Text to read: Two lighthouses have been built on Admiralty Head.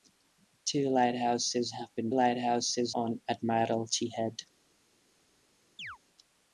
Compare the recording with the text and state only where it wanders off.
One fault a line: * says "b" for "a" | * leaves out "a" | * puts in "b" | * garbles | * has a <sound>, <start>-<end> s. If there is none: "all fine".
* says "lighthouses" for "built"
* has a chirp, 5.8-6.0 s